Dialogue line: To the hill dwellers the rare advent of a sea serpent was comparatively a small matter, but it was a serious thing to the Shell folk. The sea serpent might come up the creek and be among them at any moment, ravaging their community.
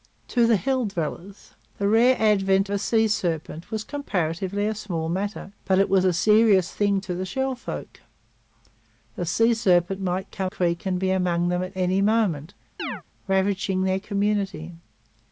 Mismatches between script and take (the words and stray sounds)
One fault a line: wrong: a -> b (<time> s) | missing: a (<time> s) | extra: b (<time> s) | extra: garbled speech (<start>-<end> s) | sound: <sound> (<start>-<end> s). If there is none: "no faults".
missing: of (2.7 s)
missing: up the (10.5 s)
sound: chirp (12.8-13.0 s)